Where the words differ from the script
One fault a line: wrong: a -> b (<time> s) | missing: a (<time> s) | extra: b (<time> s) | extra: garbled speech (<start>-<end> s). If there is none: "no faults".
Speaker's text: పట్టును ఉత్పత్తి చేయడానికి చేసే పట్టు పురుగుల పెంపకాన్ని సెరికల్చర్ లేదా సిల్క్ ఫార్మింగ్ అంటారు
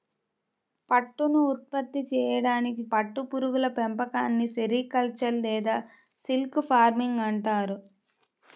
missing: చేసే (2.8 s)